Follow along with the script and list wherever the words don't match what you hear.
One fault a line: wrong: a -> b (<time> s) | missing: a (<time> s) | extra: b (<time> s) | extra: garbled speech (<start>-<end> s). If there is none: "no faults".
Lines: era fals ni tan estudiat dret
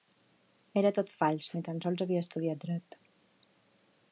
extra: tot (1.0 s)
extra: sols havia (1.9 s)